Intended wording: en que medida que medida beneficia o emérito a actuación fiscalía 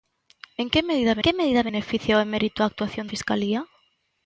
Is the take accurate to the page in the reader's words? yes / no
yes